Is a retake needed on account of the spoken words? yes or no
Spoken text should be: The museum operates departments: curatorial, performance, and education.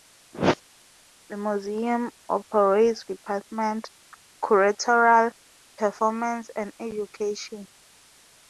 no